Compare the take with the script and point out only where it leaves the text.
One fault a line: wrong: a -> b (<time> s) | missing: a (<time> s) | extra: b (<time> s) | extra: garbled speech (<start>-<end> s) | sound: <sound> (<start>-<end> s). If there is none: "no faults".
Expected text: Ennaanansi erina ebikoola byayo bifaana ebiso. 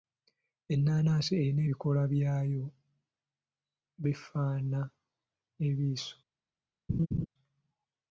sound: laugh (6.9-7.3 s)